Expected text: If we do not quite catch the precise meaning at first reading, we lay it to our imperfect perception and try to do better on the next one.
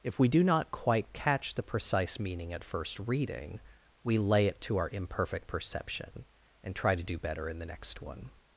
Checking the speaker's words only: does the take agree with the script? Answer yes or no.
no